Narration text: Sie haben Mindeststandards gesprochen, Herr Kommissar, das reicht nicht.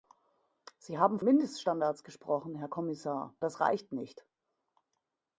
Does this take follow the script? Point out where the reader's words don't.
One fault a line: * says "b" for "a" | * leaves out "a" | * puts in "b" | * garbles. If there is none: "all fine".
all fine